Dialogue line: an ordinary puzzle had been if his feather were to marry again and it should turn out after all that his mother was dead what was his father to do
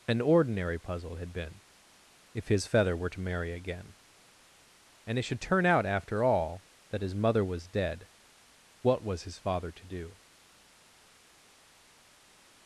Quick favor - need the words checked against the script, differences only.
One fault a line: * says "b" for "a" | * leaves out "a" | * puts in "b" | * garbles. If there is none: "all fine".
all fine